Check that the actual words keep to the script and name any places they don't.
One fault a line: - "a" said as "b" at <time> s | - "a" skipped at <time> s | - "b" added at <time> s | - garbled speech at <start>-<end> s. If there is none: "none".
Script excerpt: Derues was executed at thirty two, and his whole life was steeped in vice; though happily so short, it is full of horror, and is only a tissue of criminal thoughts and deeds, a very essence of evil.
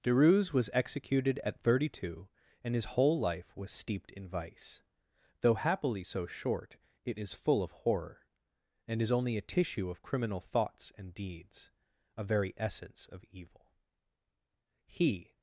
- "He" added at 14.9 s